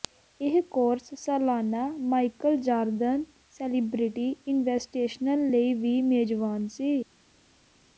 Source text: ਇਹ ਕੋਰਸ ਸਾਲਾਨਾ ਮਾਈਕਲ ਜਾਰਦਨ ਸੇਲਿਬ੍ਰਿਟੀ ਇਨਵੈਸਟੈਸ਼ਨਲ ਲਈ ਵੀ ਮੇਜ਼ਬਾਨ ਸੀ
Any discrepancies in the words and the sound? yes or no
no